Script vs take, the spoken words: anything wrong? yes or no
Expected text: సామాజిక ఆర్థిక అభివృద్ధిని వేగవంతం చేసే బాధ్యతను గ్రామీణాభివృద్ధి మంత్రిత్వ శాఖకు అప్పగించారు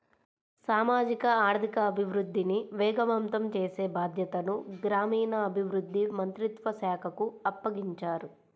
no